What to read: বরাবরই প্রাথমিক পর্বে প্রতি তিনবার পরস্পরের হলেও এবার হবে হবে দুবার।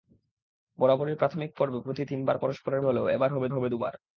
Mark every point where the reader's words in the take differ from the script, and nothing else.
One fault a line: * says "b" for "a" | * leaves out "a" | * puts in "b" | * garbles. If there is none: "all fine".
all fine